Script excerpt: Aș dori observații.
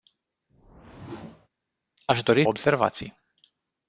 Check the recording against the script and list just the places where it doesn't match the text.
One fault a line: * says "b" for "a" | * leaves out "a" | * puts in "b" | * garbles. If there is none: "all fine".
all fine